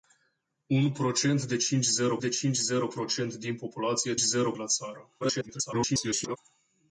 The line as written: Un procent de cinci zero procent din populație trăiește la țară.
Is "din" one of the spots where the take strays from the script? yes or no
no